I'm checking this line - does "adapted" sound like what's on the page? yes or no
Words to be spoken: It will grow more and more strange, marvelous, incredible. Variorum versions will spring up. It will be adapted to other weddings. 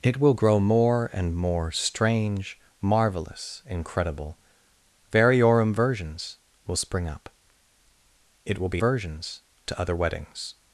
no